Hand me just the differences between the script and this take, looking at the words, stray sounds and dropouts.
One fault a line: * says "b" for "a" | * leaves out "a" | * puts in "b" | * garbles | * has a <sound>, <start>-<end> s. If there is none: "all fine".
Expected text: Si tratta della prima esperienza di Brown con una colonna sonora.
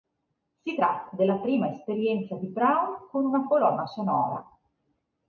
all fine